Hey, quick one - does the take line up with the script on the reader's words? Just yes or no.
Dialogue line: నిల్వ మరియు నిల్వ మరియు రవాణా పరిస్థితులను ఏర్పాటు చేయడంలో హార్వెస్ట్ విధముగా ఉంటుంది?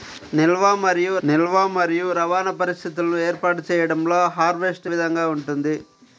yes